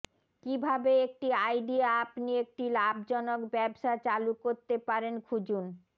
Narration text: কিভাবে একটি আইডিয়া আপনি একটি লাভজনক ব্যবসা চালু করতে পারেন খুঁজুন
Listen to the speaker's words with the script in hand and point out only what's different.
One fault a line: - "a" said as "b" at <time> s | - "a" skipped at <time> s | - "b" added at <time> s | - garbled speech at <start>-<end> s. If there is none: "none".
none